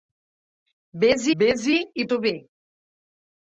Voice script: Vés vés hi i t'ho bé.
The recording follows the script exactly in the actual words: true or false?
true